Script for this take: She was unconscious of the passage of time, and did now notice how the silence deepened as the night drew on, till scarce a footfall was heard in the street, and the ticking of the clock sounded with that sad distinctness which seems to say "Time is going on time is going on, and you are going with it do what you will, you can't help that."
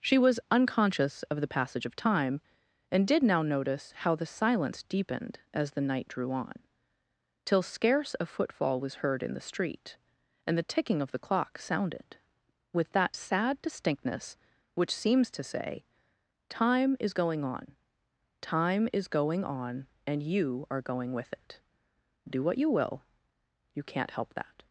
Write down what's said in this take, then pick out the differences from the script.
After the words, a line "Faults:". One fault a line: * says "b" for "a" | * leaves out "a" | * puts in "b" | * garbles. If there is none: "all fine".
She was unconscious of the passage of time, and did now notice how the silence deepened as the night drew on, till scarce a footfall was heard in the street, and the ticking of the clock sounded with that sad distinctness which seems to say "Time is going on time is going on, and you are going with it do what you will, you can't help that."
Faults:
all fine